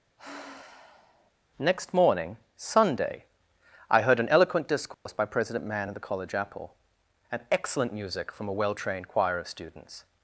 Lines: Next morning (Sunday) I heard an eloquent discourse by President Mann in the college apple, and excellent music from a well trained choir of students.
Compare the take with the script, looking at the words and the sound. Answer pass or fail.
fail